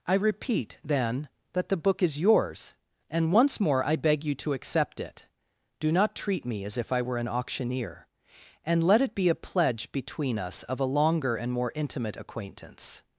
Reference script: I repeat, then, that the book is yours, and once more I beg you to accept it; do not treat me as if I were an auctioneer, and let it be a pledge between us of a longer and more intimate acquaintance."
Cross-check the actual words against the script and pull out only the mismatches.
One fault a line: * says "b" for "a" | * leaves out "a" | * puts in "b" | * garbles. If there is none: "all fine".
all fine